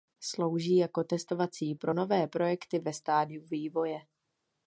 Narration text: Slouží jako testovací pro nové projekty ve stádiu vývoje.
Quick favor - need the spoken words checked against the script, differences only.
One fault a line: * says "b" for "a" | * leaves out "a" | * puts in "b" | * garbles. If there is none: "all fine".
all fine